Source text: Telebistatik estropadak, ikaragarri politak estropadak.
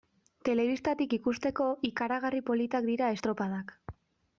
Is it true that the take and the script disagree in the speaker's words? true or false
true